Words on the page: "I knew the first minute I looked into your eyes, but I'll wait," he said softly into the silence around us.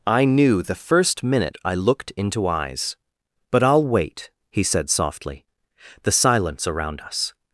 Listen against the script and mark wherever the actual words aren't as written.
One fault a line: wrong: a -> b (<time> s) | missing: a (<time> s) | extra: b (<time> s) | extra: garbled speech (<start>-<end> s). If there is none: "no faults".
missing: your (2.5 s)
missing: into (5.5 s)